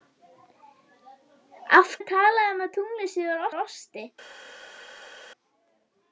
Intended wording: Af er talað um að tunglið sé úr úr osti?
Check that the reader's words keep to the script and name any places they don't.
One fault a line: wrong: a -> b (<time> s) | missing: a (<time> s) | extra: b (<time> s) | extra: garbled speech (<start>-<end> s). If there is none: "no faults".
no faults